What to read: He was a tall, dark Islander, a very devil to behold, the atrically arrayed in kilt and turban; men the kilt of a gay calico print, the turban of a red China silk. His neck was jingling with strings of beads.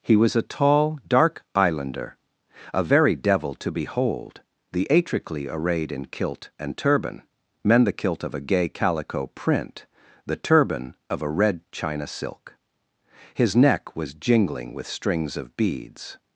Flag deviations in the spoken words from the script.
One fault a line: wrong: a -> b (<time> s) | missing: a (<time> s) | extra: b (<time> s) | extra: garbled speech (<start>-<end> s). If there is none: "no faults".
no faults